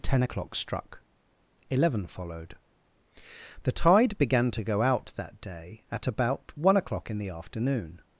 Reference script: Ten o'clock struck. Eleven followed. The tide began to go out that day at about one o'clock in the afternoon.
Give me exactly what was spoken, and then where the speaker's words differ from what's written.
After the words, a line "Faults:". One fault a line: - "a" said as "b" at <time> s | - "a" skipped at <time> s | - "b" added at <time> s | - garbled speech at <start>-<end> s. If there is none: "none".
Ten o'clock struck. Eleven followed. The tide began to go out that day at about one o'clock in the afternoon.
Faults:
none